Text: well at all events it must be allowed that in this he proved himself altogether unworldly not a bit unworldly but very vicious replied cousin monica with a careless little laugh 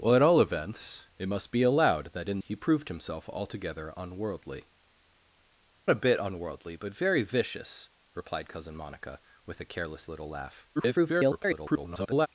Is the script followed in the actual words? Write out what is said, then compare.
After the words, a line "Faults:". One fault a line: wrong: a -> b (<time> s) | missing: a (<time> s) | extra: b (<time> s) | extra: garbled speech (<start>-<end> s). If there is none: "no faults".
well at all events it must be allowed that in he proved himself altogether unworldly a bit unworldly but very vicious replied cousin monica with a careless little laugh [garbled]
Faults:
missing: this (2.4 s)
missing: not (4.7 s)
extra: garbled speech (10.8-12.3 s)